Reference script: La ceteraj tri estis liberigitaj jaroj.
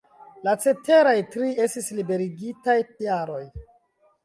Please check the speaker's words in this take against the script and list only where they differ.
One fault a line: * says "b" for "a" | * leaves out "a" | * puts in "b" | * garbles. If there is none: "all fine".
all fine